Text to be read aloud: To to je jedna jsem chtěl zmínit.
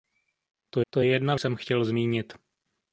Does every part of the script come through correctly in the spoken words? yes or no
yes